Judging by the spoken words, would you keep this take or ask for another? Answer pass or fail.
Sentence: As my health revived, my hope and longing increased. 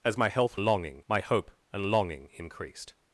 fail